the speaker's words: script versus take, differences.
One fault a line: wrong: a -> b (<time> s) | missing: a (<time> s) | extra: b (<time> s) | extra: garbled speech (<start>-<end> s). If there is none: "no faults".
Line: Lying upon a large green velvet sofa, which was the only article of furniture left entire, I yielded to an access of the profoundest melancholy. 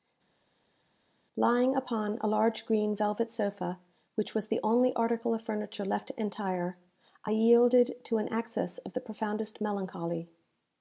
no faults